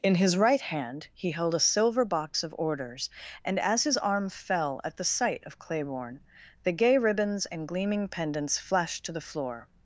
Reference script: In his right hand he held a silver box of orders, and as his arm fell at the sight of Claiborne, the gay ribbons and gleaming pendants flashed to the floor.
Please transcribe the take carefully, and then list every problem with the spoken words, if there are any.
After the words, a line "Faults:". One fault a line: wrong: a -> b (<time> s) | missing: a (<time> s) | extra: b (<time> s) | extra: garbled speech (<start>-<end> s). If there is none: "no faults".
In his right hand he held a silver box of orders, and as his arm fell at the sight of Claiborne, the gay ribbons and gleaming pendants flashed to the floor.
Faults:
no faults